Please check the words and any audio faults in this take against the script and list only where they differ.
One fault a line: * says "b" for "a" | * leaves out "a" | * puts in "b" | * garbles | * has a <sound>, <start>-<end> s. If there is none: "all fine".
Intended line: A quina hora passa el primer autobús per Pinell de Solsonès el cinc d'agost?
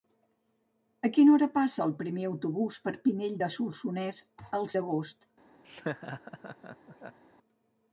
* leaves out "cinc"
* has a laugh, 5.6-7.2 s